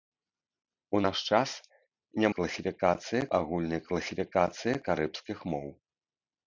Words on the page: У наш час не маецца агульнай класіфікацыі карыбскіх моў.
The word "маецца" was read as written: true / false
false